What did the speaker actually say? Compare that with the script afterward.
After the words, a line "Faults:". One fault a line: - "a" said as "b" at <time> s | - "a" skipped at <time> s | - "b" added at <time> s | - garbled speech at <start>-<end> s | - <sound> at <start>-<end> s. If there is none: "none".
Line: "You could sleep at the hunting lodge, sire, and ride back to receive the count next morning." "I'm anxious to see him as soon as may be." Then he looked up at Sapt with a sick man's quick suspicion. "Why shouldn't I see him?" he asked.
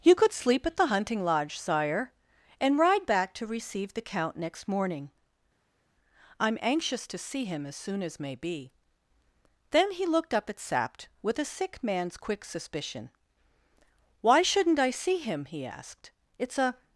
"You could sleep at the hunting lodge, sire, and ride back to receive the count next morning." "I'm anxious to see him as soon as may be." Then he looked up at Sapt with a sick man's quick suspicion. "Why shouldn't I see him?" he asked. "It's a
Faults:
- "It's a" added at 16.4 s